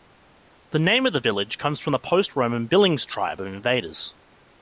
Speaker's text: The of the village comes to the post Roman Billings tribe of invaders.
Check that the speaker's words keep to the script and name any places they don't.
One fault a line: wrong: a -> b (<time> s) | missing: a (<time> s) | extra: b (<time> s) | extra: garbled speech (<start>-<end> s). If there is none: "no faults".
extra: name (0.8 s)
wrong: to -> from (1.8 s)